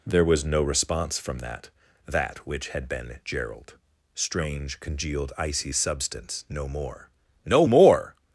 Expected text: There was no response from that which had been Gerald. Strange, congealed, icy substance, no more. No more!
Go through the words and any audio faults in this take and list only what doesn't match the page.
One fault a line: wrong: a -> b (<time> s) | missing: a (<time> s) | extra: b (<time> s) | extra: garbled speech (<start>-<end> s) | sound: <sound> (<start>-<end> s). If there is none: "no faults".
extra: that (2.1 s)